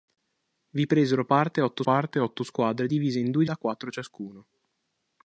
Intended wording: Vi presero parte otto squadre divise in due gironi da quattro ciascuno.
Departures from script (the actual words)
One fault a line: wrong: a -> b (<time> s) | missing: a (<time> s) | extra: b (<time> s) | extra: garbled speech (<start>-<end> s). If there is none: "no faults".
extra: parte otto (1.8 s)
missing: gironi (3.4 s)